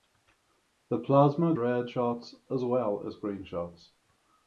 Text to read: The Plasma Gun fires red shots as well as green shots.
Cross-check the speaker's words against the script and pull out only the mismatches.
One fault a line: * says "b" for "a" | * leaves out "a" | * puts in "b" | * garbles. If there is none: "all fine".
* leaves out "Gun fires"